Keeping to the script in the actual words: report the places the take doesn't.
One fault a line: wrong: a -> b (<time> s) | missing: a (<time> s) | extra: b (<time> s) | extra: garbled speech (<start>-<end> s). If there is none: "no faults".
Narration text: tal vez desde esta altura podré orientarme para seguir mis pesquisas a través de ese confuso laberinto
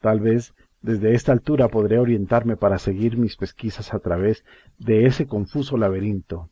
no faults